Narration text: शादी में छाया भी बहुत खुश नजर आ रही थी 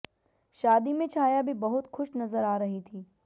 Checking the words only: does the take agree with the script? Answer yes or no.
yes